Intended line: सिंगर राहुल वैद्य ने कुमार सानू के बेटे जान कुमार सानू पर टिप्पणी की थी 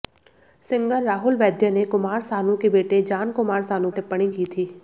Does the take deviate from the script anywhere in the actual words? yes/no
yes